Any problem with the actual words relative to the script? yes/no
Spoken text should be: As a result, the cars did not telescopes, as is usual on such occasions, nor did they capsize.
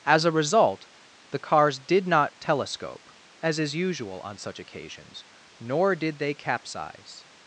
yes